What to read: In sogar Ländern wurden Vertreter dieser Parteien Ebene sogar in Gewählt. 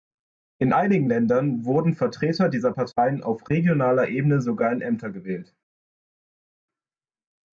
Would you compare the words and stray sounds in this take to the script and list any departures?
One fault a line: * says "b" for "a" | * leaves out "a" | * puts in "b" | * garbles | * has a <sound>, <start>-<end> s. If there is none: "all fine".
* says "einigen" for "sogar"
* puts in "auf regionaler"
* puts in "Ämter"